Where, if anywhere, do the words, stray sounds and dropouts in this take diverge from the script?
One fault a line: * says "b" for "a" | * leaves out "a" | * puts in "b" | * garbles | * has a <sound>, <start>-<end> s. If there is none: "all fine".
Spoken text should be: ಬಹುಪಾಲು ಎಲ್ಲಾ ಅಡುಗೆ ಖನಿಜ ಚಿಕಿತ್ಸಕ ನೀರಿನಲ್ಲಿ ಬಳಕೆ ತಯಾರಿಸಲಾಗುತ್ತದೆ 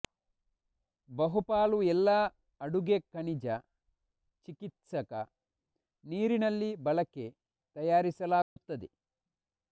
* has a dropout, 8.4-8.6 s